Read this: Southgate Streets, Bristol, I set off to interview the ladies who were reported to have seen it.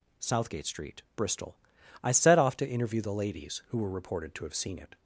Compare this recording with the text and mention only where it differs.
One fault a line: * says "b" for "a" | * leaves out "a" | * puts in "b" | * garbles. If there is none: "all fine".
* says "Street" for "Streets"